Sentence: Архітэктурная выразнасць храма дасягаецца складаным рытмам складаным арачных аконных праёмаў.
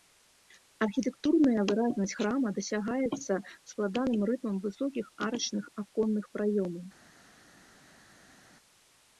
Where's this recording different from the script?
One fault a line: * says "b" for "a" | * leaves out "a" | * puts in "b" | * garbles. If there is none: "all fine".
* says "высокіх" for "складаным"